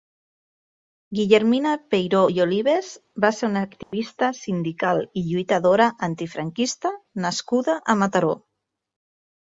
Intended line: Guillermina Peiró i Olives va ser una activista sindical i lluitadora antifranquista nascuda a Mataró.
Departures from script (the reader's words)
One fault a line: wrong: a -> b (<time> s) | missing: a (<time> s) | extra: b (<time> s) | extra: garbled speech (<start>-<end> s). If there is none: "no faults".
no faults